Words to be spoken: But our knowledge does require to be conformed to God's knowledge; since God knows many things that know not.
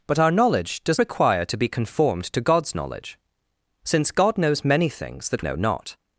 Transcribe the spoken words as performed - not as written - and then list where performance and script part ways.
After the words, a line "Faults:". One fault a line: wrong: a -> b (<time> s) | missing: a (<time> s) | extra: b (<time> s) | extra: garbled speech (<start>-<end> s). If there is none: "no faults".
But our knowledge does require to be conformed to God's knowledge; since God knows many things that know not.
Faults:
no faults